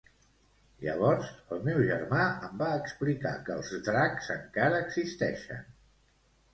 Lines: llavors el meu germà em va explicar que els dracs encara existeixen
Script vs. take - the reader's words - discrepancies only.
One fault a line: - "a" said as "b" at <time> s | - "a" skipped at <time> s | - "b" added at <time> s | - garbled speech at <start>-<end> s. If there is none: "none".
none